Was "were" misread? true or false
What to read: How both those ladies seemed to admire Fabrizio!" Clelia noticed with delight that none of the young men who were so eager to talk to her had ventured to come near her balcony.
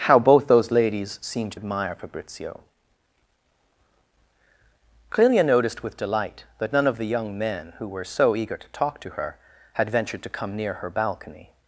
false